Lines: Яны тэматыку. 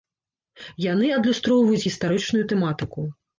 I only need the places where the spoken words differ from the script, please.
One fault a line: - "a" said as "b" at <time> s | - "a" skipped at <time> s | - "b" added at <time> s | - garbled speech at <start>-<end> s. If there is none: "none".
- "адлюстроўваюць гістарычную" added at 1.2 s